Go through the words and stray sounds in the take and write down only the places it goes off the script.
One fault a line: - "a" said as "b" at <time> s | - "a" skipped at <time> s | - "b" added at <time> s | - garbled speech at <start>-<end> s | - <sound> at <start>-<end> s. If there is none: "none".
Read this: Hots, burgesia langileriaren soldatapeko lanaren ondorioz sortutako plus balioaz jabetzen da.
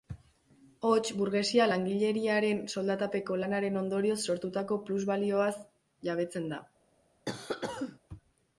- cough at 7.3-8.0 s